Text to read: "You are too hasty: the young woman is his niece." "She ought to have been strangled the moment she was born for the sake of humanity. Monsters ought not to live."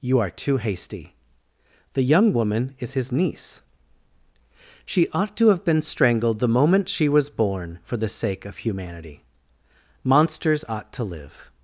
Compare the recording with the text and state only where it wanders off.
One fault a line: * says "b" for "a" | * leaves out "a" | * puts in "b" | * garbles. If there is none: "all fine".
* leaves out "not"